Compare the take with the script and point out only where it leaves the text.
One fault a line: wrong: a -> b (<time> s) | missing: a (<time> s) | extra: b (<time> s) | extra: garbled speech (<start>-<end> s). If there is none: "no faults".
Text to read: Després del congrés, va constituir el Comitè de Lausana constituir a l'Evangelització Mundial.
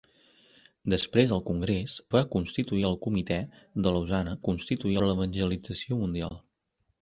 no faults